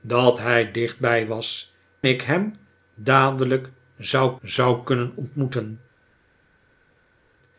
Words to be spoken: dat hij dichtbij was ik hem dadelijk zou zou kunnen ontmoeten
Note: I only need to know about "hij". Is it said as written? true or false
true